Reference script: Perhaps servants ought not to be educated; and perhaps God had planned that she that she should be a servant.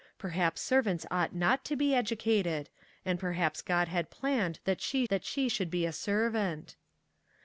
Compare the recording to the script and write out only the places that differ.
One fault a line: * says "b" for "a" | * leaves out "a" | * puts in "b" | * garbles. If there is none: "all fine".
all fine